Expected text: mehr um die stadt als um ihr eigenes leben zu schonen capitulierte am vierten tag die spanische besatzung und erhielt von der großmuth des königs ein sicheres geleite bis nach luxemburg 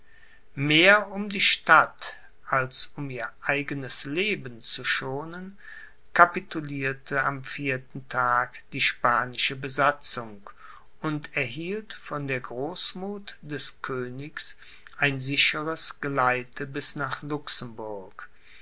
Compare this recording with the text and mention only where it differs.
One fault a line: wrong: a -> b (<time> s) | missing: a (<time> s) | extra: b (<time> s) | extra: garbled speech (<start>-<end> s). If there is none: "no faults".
no faults